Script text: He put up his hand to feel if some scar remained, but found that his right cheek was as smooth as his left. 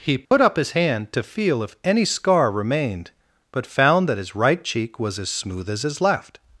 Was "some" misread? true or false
true